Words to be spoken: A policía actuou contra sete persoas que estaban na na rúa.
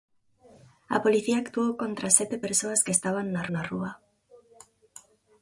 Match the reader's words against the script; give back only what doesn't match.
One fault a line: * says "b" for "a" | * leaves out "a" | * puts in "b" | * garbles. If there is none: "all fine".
all fine